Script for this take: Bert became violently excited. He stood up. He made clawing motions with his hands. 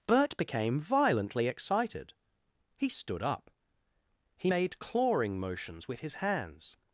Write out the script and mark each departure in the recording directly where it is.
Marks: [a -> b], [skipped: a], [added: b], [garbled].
Bert became violently excited. He stood up. He made clawing motions with his hands.